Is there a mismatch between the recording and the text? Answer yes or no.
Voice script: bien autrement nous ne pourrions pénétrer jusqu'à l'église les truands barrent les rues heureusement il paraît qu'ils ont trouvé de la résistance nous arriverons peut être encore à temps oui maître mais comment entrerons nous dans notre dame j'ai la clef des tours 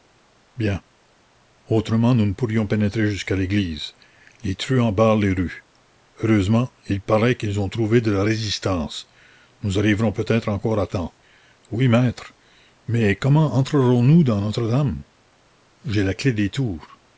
no